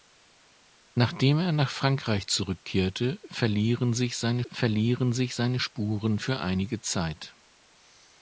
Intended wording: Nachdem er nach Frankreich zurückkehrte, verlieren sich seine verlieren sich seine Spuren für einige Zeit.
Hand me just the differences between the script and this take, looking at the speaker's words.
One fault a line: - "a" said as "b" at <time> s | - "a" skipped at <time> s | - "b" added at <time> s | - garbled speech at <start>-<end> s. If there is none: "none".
none